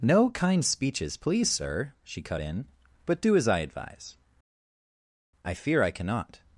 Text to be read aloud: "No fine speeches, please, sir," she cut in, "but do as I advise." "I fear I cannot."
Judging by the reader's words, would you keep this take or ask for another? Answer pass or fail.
fail